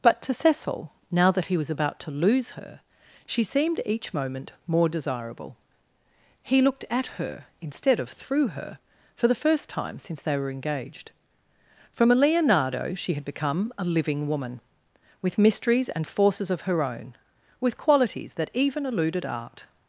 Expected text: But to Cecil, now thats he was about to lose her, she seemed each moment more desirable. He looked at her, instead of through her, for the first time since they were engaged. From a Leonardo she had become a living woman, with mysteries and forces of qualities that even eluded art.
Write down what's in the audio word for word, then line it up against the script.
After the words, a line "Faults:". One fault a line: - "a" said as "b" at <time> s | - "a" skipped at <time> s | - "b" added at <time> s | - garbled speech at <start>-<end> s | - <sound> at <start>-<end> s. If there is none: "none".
But to Cecil, now that he was about to lose her, she seemed each moment more desirable. He looked at her, instead of through her, for the first time since they were engaged. From a Leonardo she had become a living woman, with mysteries and forces of her own, with qualities that even eluded art.
Faults:
- "thats" said as "that" at 1.3 s
- "her own with" added at 16.6 s